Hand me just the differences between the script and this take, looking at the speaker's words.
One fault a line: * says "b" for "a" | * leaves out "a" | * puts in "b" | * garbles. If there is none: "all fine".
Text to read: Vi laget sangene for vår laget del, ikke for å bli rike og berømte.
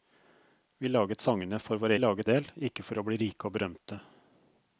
all fine